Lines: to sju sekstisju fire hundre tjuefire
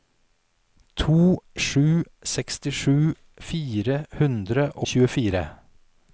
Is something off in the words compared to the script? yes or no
no